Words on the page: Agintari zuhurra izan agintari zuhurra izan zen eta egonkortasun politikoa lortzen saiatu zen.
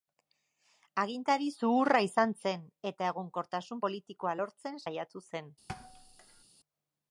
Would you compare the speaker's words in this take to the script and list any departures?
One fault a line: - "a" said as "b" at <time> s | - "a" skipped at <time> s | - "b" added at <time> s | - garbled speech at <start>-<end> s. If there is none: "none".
- "agintari zuhurra izan" skipped at 2.3 s